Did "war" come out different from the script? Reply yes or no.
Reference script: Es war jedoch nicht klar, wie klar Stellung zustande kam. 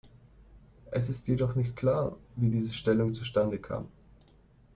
yes